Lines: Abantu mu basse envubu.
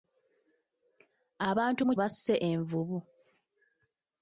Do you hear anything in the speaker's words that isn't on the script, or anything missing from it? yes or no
no